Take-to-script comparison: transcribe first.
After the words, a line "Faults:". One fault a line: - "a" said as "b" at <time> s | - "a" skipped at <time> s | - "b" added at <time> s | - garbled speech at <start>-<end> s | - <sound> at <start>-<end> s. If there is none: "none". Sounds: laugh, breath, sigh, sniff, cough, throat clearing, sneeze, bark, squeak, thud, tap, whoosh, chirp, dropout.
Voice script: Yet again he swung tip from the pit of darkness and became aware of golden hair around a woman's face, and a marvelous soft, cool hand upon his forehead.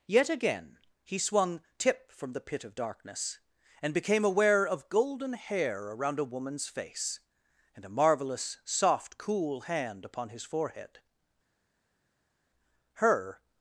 Yet again he swung tip from the pit of darkness and became aware of golden hair around a woman's face, and a marvelous soft, cool hand upon his forehead. Her
Faults:
- "Her" added at 12.9 s